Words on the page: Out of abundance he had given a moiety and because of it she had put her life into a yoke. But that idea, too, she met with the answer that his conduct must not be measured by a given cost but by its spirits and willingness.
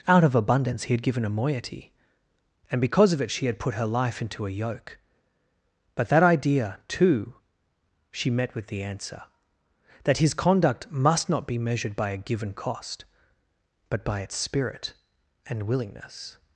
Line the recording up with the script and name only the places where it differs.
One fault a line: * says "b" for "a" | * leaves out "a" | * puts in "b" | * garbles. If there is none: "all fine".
* says "spirit" for "spirits"